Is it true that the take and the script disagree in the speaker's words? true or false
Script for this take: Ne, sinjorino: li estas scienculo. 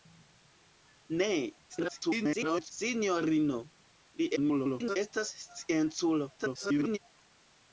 true